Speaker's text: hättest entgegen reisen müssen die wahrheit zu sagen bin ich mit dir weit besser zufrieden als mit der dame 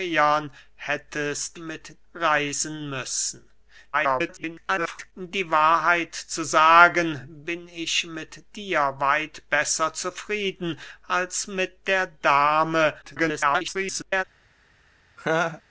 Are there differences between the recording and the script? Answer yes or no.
yes